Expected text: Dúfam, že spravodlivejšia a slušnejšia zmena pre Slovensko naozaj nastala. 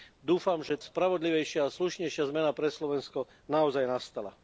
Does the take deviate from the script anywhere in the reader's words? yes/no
no